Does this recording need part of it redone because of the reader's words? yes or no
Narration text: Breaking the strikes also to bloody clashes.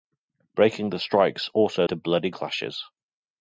no